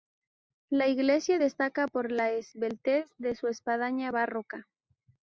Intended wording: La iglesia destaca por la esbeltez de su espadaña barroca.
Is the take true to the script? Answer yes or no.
yes